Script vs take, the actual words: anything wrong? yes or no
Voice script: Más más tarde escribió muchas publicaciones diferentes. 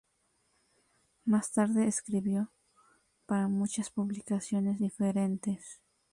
yes